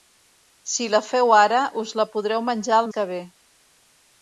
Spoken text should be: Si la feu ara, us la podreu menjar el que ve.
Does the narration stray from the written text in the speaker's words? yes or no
no